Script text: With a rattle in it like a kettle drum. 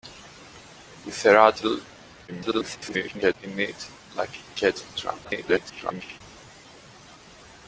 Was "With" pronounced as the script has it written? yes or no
yes